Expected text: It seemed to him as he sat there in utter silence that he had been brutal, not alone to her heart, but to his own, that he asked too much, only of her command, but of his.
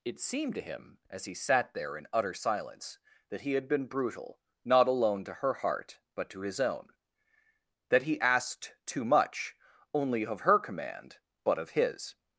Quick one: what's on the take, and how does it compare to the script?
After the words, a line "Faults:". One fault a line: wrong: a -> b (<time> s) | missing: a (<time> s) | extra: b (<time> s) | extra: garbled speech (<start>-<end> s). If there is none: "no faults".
It seemed to him as he sat there in utter silence that he had been brutal, not alone to her heart, but to his own, that he asked too much, only of her command, but of his.
Faults:
no faults